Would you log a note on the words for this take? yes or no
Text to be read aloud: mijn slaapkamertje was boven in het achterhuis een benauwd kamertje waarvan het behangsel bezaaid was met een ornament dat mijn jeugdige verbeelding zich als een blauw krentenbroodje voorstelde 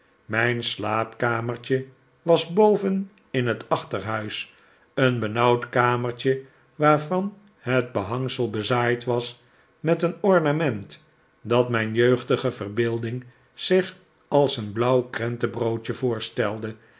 no